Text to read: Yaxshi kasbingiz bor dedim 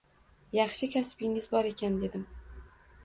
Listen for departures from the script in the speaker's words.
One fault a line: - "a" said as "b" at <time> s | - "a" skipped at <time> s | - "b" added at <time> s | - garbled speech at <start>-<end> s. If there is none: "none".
- "ekan" added at 1.7 s